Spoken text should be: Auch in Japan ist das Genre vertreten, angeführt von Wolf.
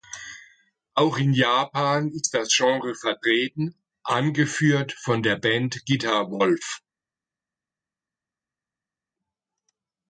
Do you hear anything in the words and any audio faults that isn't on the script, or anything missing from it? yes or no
yes